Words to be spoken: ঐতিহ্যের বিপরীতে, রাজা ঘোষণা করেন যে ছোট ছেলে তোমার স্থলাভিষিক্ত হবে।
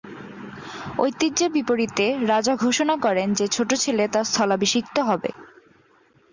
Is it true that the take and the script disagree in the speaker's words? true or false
true